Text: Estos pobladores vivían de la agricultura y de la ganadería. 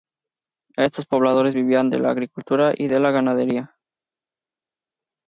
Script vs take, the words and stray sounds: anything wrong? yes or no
no